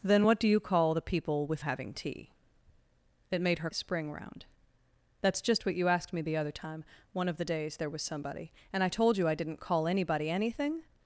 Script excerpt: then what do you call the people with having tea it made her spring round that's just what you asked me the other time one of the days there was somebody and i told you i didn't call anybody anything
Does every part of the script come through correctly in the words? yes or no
yes